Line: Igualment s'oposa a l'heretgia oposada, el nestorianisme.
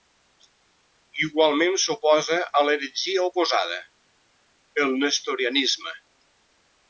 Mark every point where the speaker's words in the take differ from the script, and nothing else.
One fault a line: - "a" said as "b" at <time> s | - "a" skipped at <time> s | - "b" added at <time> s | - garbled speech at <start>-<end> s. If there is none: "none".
none